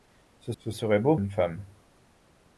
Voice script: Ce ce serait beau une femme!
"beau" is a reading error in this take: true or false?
false